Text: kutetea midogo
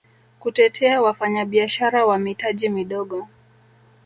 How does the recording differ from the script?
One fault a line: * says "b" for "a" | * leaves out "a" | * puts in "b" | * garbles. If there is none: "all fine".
* puts in "wafanyabiashara wa mitaji"